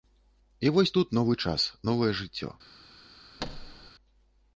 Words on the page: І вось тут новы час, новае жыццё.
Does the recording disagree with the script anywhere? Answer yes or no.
no